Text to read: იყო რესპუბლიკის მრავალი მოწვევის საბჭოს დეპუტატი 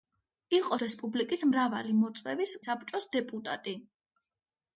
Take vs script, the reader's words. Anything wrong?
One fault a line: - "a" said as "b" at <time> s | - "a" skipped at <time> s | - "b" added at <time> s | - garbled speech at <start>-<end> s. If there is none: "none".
none